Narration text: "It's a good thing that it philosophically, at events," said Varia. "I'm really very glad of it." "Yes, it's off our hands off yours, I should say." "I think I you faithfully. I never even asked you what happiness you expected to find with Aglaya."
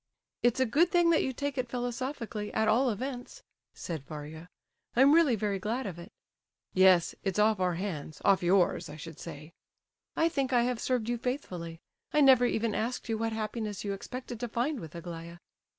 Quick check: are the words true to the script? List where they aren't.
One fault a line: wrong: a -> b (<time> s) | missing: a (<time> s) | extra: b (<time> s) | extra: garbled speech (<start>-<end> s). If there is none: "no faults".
extra: you take (1.2 s)
extra: all (2.7 s)
extra: have served (10.6 s)